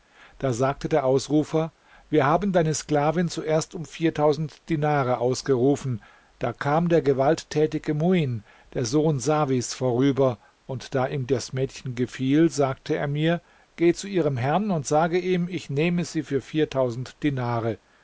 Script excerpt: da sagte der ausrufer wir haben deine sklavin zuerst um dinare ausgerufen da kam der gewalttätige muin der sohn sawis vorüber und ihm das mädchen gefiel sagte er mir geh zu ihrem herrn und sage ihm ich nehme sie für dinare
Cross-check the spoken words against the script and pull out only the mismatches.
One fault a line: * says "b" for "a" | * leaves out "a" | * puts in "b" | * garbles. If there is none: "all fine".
* puts in "da"